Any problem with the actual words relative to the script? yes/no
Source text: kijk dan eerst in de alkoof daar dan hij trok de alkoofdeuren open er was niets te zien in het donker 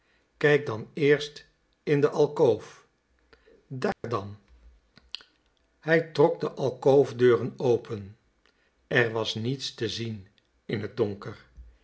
no